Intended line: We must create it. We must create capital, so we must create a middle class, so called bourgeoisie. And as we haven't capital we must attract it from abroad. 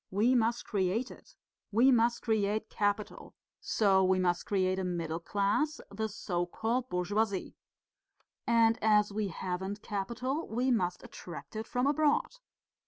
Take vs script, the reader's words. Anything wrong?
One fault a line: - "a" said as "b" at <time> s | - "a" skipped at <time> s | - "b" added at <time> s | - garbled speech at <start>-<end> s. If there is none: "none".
- "the" added at 5.9 s